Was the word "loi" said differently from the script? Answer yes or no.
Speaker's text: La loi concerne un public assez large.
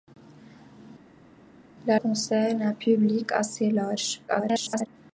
yes